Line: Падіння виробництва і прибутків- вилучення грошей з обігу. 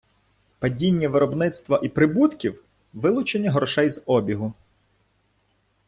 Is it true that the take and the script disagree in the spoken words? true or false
false